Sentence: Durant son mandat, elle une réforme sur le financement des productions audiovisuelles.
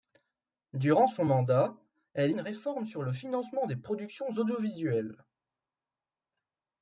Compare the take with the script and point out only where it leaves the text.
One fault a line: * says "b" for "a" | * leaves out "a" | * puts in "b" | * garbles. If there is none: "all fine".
all fine